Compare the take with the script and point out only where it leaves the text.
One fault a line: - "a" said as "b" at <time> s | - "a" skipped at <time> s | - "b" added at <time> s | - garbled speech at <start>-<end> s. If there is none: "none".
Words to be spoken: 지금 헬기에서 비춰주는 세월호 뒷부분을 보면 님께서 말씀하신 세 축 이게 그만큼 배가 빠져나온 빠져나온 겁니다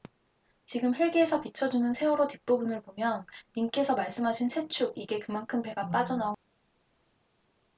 - "빠져나온" skipped at 6.3 s